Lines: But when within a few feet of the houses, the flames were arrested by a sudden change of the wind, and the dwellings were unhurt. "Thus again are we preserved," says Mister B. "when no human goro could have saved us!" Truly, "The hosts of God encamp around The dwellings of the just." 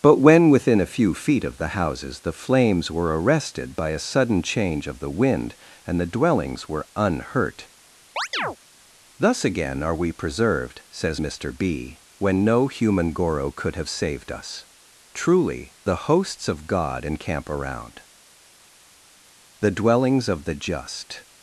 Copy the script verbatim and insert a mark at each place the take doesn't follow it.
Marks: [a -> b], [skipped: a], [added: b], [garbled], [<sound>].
But when within a few feet of the houses, the flames were arrested by a sudden change of the wind, and the dwellings were unhurt. [chirp] "Thus again are we preserved," says Mister B. "when no human goro could have saved us!" Truly, "The hosts of God encamp around The dwellings of the just."